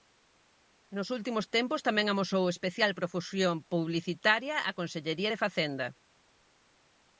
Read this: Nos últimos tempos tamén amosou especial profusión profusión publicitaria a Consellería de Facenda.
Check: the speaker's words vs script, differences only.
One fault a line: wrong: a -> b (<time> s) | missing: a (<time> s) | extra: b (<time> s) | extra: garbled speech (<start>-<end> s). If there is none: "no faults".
missing: profusión (3.6 s)